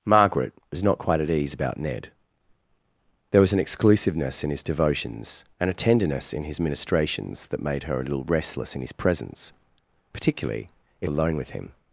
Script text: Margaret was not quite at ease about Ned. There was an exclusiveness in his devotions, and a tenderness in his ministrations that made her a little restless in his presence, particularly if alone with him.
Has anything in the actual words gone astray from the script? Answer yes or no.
no